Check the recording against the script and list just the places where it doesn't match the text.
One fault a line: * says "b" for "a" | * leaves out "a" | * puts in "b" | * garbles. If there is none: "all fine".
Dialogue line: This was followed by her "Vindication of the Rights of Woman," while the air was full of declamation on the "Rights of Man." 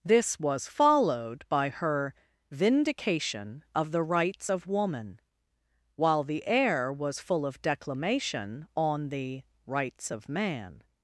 all fine